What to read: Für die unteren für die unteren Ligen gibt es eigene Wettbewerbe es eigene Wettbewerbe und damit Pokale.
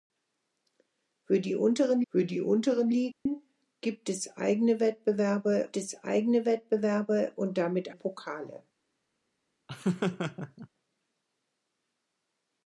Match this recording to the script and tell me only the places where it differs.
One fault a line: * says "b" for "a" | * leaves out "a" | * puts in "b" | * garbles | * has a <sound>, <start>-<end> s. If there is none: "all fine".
* has a dropout, 3.1-3.3 s
* has a laugh, 9.7-10.7 s